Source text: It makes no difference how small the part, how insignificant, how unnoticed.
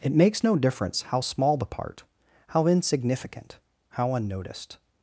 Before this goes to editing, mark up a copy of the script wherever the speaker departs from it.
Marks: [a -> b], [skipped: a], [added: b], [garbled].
It makes no difference how small the part, how insignificant, how unnoticed.